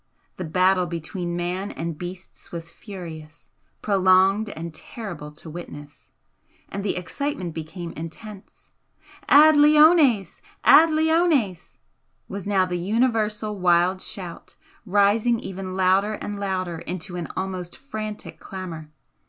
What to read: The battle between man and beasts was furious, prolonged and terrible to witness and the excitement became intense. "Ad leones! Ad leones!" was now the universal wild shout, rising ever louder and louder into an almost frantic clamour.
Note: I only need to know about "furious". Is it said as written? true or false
true